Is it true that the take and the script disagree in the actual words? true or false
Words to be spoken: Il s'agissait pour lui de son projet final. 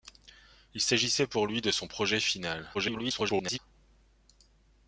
true